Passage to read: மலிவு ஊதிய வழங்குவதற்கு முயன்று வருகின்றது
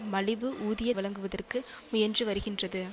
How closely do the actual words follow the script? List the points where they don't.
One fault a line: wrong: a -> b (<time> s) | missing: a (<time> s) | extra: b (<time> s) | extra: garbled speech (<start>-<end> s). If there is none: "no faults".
no faults